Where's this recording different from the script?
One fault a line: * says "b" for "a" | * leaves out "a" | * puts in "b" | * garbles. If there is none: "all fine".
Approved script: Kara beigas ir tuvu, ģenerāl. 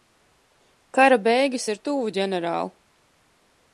all fine